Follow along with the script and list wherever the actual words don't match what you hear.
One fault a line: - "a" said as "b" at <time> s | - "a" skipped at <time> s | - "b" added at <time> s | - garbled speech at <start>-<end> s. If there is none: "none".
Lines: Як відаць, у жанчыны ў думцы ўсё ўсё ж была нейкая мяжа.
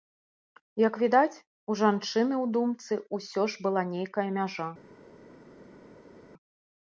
- "ўсё" skipped at 3.4 s